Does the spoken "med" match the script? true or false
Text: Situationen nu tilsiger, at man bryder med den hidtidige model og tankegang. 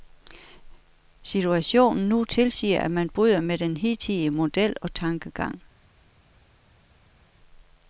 true